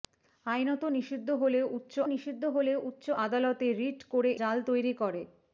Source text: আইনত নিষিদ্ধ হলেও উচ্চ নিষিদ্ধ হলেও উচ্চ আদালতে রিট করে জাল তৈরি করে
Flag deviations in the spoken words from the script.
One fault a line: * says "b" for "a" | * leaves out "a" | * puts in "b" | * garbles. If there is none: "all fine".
all fine